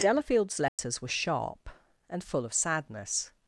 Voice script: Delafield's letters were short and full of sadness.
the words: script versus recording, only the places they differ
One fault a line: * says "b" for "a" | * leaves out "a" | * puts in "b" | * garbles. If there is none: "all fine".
* says "sharp" for "short"